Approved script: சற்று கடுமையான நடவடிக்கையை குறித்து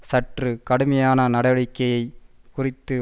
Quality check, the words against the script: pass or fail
pass